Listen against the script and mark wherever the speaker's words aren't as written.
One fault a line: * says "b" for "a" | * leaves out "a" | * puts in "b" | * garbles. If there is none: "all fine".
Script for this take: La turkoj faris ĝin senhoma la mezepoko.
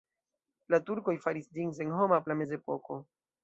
all fine